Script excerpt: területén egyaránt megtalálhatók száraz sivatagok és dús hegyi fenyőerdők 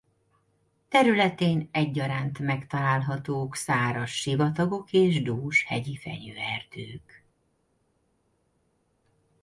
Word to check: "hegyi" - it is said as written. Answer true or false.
true